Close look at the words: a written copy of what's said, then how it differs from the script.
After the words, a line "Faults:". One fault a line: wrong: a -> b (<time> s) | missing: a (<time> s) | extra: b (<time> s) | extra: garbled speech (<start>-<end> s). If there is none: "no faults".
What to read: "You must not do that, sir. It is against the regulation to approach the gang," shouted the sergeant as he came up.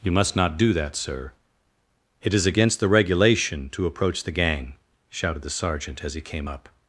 "You must not do that, sir. It is against the regulation to approach the gang," shouted the sergeant as he came up.
Faults:
no faults